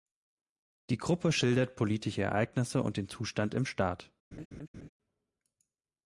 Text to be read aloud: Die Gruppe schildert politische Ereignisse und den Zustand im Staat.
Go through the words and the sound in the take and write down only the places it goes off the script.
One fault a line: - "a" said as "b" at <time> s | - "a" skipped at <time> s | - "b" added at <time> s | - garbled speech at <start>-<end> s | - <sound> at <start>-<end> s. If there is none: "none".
- laugh at 4.3-4.9 s